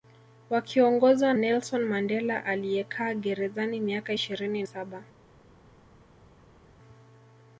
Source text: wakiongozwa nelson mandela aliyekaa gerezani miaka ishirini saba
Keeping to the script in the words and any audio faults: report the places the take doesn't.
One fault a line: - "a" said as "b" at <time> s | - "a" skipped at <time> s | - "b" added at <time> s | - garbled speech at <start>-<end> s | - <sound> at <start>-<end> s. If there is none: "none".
none